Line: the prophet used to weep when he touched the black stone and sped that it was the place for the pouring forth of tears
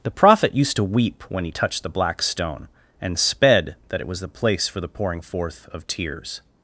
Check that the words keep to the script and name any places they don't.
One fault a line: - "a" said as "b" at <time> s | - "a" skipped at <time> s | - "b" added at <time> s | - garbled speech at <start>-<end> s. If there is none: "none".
none